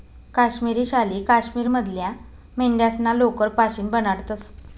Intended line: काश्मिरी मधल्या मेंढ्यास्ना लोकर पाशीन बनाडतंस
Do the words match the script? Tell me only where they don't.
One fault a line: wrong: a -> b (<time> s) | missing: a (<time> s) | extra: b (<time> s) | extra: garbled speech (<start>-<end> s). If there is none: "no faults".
extra: शाली काश्मीर (0.8 s)